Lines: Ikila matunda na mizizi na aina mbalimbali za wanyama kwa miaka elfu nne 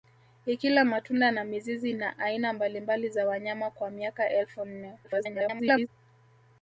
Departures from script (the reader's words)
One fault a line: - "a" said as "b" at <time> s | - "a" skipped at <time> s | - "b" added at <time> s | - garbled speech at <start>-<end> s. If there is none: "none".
- garbled speech at 5.0-5.9 s